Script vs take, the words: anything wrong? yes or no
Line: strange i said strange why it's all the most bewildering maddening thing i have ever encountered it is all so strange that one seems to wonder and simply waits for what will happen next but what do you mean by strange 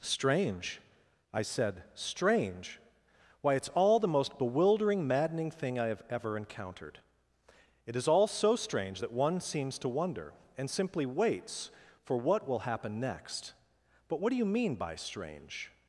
no